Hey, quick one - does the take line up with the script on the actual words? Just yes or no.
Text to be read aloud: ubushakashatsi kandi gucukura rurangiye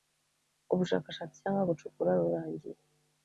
no